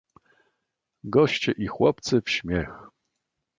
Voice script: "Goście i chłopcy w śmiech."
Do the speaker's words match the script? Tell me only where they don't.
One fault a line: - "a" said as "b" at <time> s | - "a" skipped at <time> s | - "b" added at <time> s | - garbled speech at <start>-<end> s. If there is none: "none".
none